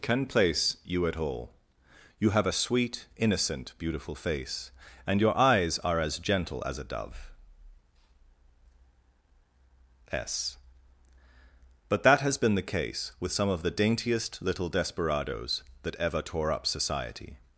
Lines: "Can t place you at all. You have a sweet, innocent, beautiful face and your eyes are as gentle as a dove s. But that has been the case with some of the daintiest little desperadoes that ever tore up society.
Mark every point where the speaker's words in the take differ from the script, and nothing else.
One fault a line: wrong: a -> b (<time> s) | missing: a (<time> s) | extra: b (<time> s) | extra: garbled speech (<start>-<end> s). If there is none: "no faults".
missing: t (0.2 s)